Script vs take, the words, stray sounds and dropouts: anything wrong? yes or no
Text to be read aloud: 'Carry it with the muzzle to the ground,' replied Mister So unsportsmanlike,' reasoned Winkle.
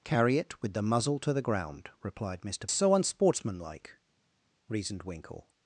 no